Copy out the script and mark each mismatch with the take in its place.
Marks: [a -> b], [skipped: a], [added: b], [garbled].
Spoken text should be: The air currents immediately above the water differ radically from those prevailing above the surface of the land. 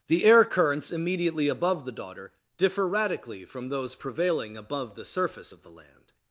The air currents immediately above the [water -> daughter] differ radically from those prevailing above the surface of the land.